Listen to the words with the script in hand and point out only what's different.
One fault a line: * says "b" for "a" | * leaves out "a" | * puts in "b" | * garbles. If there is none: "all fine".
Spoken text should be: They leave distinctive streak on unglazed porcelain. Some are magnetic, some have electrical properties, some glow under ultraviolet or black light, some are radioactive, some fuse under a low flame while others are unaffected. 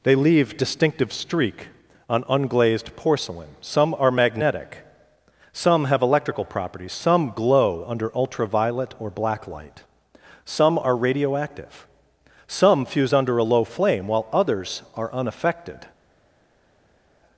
all fine